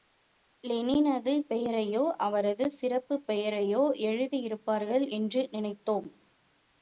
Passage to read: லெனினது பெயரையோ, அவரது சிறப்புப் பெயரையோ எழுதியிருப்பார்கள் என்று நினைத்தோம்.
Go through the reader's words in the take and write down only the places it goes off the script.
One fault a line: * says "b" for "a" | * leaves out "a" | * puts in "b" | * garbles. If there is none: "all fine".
all fine